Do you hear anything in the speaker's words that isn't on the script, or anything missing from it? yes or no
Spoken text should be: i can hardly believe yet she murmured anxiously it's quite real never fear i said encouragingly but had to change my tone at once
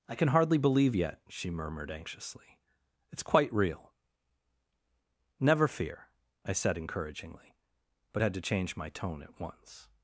no